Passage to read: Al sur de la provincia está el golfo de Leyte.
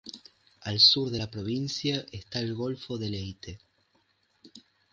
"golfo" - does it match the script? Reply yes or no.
yes